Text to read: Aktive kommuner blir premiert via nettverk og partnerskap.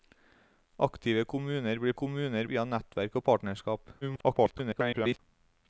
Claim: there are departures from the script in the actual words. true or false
true